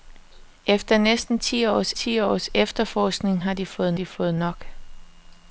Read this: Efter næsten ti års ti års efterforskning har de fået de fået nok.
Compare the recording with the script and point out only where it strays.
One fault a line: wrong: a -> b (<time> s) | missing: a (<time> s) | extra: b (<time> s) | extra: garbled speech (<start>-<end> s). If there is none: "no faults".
no faults